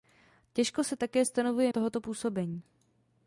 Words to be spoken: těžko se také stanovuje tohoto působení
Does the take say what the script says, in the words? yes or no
yes